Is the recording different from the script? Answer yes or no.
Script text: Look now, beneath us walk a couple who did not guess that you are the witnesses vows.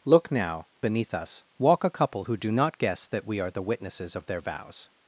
yes